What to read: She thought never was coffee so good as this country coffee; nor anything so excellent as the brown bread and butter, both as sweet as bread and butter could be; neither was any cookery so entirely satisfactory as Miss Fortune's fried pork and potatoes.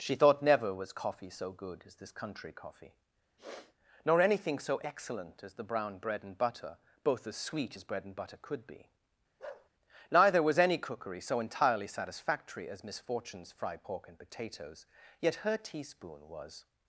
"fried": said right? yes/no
yes